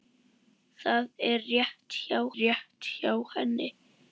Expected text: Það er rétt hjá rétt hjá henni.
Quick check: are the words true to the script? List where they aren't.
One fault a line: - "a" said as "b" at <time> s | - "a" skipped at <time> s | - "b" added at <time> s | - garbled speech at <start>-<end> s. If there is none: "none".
none